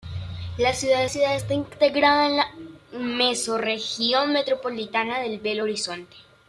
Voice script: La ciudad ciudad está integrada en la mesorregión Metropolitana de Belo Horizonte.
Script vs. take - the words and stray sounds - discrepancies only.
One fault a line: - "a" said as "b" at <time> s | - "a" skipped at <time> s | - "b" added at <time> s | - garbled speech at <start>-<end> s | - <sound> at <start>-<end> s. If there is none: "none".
none